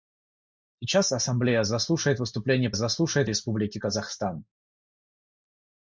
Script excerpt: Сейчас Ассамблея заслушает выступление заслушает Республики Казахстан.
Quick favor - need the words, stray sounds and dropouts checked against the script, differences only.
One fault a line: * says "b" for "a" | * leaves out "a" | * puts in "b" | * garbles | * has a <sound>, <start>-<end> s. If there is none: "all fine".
all fine